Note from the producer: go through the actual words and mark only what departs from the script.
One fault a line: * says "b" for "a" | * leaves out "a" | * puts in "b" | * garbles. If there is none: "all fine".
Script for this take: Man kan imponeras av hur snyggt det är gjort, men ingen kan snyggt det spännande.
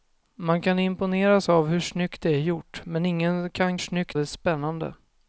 all fine